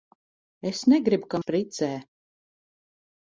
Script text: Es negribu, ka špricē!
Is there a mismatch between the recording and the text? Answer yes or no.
no